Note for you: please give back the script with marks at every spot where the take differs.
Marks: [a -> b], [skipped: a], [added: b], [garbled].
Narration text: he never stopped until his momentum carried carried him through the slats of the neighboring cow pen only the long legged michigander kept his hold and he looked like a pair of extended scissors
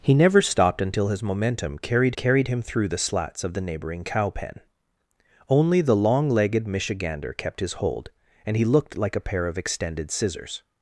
he never stopped until his momentum carried carried him through the slats of the neighboring cow pen only the long legged michigander kept his hold and he looked like a pair of extended scissors